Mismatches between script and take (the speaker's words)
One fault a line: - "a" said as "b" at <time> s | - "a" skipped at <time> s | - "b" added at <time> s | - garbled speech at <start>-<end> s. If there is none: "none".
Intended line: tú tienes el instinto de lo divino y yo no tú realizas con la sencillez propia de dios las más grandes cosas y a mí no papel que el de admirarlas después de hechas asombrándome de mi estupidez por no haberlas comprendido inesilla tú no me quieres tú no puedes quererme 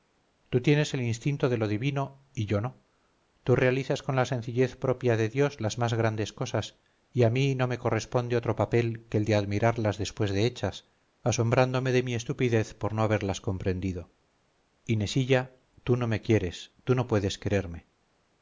- "me corresponde otro" added at 7.7 s